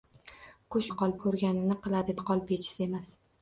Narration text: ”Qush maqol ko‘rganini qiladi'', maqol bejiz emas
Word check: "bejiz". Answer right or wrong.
right